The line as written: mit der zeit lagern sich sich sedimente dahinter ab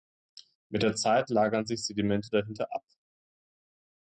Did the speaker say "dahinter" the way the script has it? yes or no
yes